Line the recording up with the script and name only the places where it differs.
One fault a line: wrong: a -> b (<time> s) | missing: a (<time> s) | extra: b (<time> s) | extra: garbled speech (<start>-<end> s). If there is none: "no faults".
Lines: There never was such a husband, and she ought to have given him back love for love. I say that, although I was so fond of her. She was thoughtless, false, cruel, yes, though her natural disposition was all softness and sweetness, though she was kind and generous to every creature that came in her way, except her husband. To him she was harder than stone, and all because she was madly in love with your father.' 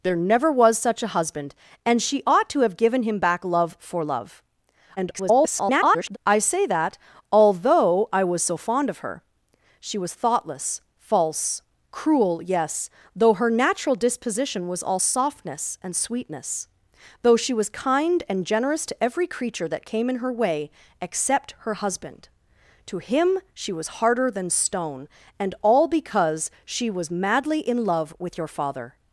extra: garbled speech (5.0-6.2 s)